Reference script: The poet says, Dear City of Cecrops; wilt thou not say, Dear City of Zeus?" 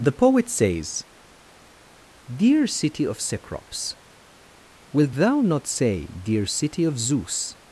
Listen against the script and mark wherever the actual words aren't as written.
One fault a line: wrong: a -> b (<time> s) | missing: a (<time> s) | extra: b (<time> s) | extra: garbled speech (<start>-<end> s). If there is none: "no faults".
no faults